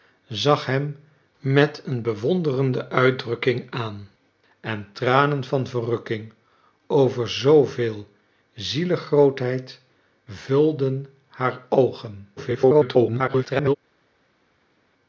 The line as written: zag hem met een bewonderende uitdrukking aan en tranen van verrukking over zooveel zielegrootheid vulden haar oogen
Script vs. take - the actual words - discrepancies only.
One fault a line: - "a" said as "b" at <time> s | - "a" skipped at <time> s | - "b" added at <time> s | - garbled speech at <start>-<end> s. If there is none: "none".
- garbled speech at 12.4-13.8 s